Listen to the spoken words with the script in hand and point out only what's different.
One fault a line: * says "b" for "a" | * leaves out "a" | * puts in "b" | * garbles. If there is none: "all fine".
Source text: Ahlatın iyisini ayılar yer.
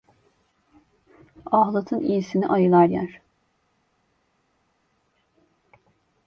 all fine